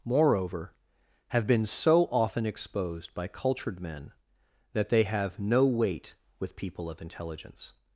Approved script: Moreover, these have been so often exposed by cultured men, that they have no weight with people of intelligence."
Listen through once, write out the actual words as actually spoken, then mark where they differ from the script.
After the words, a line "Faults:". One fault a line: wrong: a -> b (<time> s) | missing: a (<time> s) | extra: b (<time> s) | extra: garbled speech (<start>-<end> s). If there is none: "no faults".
Moreover, have been so often exposed by cultured men, that they have no weight with people of intelligence."
Faults:
missing: these (0.7 s)